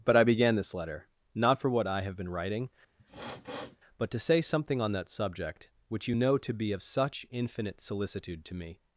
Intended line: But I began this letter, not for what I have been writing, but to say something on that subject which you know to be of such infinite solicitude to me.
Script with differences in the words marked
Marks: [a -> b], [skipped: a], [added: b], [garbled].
But I began this letter, not for what I have been writing, but to say something on that subject which you know to be of such infinite solicitude to me.